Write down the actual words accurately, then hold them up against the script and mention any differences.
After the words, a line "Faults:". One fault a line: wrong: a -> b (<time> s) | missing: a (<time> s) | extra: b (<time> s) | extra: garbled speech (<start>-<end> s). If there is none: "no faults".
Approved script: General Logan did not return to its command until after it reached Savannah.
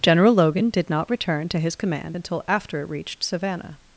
General Logan did not return to his command until after it reached Savannah.
Faults:
wrong: its -> his (1.6 s)